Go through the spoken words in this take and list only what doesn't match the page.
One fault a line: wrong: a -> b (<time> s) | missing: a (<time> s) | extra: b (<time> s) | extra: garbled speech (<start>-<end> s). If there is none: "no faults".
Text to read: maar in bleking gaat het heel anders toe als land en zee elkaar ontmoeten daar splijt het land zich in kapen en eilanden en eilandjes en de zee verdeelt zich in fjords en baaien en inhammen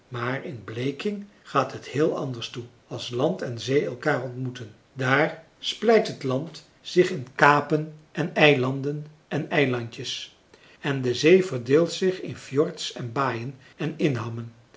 no faults